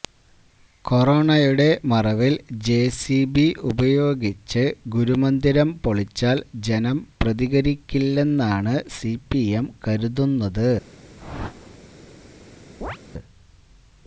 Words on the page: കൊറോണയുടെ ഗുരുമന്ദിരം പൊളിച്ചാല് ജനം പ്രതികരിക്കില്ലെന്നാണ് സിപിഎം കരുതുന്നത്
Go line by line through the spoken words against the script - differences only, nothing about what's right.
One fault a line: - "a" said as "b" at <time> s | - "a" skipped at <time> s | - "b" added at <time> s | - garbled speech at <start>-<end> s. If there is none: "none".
- "മറവില് ജെസിബി ഉപയോഗിച്ച്" added at 1.9 s